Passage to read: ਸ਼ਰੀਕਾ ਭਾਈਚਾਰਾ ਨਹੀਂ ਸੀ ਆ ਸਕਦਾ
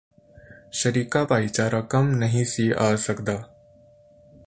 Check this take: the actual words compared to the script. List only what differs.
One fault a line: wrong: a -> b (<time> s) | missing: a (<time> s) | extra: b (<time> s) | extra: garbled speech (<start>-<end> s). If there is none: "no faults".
extra: ਕੰਮ (1.8 s)